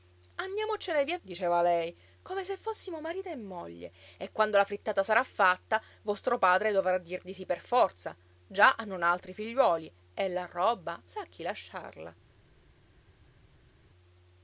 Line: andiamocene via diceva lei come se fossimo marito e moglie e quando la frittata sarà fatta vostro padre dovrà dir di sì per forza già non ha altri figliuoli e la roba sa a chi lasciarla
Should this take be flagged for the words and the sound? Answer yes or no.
no